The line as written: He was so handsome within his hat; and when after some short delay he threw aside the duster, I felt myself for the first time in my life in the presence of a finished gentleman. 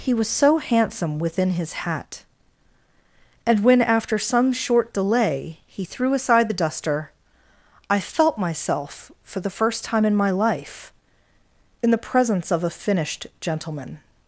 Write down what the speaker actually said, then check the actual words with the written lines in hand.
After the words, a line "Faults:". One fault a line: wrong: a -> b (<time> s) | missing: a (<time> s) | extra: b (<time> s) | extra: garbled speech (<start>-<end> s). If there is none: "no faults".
He was so handsome within his hat; and when after some short delay he threw aside the duster, I felt myself for the first time in my life in the presence of a finished gentleman.
Faults:
no faults